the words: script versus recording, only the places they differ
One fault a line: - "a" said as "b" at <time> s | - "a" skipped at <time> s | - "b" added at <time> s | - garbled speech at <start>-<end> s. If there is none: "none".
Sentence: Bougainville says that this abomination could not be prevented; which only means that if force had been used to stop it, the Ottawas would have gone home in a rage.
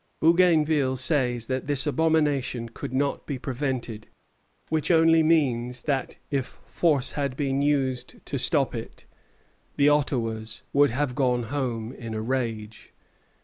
none